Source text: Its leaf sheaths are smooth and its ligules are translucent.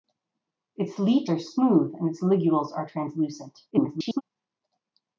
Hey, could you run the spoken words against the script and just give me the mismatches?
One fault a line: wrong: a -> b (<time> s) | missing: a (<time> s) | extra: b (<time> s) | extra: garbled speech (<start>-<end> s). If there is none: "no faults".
missing: sheaths (1.3 s)
extra: garbled speech (3.7-4.2 s)